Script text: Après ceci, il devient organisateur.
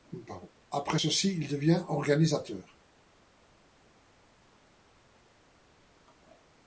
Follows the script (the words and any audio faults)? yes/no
yes